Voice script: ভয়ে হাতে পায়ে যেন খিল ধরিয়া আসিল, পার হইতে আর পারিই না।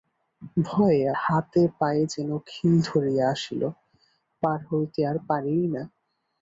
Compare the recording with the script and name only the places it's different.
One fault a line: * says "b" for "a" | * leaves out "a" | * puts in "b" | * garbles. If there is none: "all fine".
all fine